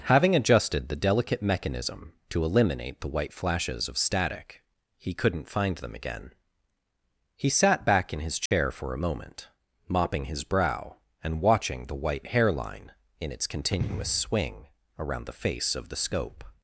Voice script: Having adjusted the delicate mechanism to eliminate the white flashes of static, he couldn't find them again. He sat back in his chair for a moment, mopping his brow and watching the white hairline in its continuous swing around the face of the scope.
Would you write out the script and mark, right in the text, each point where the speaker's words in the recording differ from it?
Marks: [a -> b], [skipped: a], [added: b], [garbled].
Having adjusted the delicate mechanism to eliminate the white flashes of static, he couldn't find them again. He sat back in his chair for a moment, mopping his brow and watching the white hairline in its continuous swing around the face of the scope.